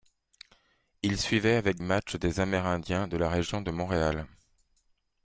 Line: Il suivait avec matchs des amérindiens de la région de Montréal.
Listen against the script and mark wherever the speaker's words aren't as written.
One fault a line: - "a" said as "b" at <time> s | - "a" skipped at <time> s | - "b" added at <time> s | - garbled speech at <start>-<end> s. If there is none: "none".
none